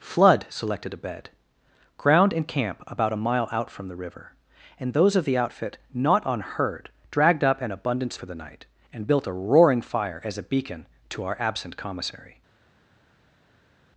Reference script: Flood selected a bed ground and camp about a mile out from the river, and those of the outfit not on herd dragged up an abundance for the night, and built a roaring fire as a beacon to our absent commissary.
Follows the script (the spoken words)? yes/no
yes